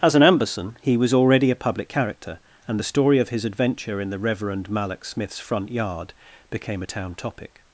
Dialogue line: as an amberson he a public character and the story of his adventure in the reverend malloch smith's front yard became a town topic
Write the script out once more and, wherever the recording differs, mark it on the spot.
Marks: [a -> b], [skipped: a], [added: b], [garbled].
as an amberson he [added: was already] a public character and the story of his adventure in the reverend malloch smith's front yard became a town topic